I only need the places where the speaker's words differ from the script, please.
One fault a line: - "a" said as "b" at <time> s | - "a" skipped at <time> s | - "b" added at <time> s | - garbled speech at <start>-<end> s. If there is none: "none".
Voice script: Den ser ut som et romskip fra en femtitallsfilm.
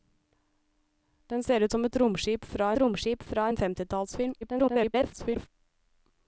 - "romskip fra" added at 2.8 s
- garbled speech at 4.4-5.5 s